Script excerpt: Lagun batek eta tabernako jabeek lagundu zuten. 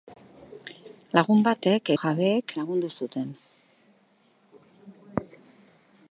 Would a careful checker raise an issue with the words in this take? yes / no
yes